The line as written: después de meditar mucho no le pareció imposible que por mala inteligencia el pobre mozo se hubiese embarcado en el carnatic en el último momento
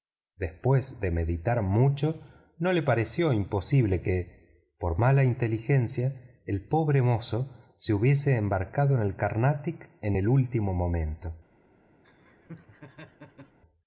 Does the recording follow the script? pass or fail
pass